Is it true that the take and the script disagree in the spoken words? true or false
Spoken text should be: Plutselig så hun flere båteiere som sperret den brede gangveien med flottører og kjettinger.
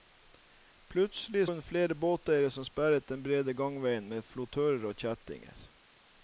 true